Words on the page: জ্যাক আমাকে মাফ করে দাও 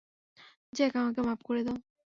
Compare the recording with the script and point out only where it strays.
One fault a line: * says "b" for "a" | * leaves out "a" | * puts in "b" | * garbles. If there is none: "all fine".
all fine